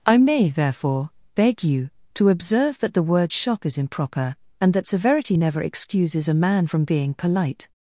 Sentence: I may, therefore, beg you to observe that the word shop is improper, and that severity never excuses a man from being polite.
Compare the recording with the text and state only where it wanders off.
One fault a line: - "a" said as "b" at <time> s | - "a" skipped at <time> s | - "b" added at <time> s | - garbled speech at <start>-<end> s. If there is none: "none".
- "shop" said as "shock" at 3.3 s